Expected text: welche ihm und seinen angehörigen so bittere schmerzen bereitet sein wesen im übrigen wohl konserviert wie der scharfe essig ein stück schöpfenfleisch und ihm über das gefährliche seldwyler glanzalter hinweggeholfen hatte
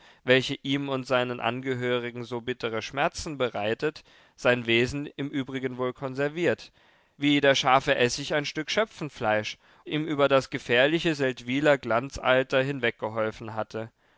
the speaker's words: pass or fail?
fail